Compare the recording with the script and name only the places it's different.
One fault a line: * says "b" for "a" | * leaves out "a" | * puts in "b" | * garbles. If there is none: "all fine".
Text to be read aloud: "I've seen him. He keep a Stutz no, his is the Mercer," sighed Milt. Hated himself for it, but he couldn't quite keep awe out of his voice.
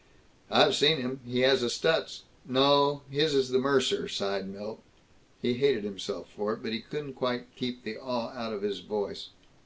* says "has" for "keep"
* puts in "He"
* puts in "the"